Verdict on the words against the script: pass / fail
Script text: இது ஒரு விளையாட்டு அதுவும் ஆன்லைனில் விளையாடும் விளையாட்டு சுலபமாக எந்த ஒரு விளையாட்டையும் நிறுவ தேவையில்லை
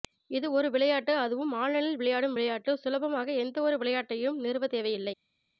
pass